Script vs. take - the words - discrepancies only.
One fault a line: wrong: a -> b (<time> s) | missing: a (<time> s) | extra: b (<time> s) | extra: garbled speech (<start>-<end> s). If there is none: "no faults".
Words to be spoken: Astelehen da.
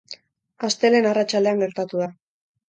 extra: arratsaldean gertatu (1.1 s)